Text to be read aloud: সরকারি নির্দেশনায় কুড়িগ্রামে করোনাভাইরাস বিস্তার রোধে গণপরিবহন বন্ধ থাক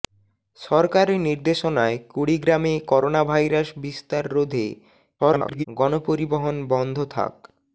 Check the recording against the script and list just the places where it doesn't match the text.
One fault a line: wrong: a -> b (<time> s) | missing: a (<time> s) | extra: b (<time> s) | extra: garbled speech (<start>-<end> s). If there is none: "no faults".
extra: garbled speech (5.2-5.6 s)